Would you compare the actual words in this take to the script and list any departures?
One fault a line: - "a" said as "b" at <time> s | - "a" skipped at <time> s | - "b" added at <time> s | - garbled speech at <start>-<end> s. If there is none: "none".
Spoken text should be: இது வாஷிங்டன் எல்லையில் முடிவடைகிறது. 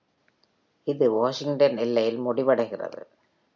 none